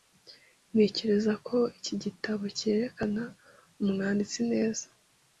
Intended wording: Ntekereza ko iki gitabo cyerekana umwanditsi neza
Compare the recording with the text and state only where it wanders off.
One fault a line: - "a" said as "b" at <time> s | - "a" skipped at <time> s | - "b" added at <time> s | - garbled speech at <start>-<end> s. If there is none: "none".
none